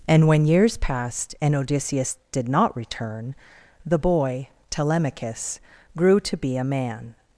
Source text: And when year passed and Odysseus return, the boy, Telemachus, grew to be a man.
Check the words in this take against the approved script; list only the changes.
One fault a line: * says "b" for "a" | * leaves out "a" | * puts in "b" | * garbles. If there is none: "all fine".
* says "years" for "year"
* puts in "did not"